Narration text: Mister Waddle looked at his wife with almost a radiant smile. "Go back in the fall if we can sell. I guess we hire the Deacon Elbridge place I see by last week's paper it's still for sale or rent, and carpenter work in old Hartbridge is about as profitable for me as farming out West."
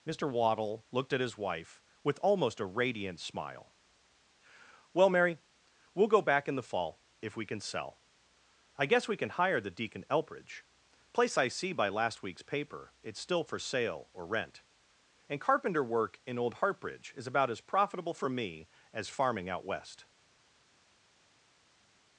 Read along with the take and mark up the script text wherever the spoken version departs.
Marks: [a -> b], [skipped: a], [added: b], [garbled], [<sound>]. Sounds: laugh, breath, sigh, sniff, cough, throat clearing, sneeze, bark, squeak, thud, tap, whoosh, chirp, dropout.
Mister Waddle looked at his wife with almost a radiant smile. [added: Well Mary we'll] "Go back in the fall if we can sell. I guess we [added: can] hire the Deacon Elbridge place I see by last week's paper it's still for sale or rent, and carpenter work in old Hartbridge is about as profitable for me as farming out West."